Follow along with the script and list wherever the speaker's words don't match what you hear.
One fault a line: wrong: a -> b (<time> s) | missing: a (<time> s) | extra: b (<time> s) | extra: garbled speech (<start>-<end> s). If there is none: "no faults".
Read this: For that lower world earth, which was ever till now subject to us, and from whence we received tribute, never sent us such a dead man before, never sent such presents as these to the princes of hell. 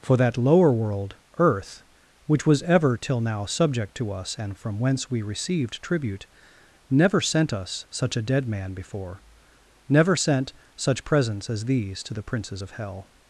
no faults